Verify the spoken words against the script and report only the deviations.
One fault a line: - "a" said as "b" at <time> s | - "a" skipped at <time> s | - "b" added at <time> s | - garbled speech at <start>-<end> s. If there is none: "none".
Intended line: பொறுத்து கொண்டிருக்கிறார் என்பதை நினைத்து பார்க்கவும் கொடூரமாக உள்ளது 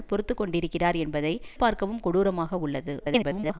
- "நினைத்து" skipped at 1.3 s
- garbled speech at 3.0-3.6 s